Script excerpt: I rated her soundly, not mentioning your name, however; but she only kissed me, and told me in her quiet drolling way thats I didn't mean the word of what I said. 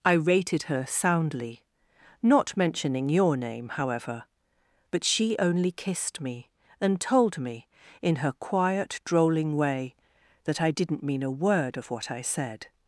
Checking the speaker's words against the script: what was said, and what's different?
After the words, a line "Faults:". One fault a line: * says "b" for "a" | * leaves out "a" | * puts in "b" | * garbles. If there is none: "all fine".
I rated her soundly, not mentioning your name, however; but she only kissed me, and told me in her quiet drolling way that I didn't mean a word of what I said.
Faults:
* says "that" for "thats"
* says "a" for "the"